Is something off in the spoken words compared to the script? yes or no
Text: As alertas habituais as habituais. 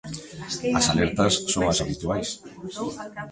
yes